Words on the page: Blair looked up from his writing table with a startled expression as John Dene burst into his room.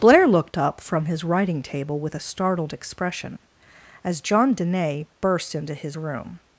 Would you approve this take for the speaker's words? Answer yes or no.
yes